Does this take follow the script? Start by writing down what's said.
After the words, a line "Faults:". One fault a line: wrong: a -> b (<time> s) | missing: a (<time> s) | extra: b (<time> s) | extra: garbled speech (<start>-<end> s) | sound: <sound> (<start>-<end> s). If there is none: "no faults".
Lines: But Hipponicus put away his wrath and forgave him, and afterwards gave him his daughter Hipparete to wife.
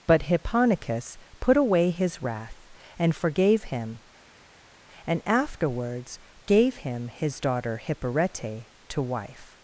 But Hipponicus put away his wrath and forgave him, and afterwards gave him his daughter Hipparete to wife.
Faults:
no faults